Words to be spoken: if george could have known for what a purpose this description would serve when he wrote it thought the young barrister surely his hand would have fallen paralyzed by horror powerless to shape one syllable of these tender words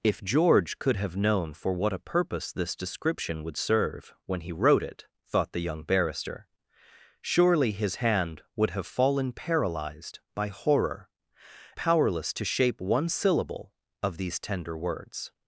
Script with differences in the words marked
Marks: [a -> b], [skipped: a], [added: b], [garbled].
if george could have known for what a purpose this description would serve when he wrote it thought the young barrister surely his hand would have fallen paralyzed by horror powerless to shape one syllable of these tender words